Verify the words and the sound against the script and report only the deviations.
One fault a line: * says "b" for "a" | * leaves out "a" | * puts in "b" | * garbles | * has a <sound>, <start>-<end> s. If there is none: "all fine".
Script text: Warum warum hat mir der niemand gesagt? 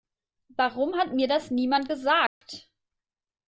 * leaves out "warum"
* says "das" for "der"
* has a dropout, 2.3-2.4 s